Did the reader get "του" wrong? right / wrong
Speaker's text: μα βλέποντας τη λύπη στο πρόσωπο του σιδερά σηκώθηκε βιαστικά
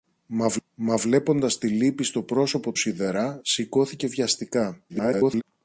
wrong